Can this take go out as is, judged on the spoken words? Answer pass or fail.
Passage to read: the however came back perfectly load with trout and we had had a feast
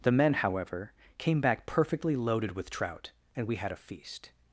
fail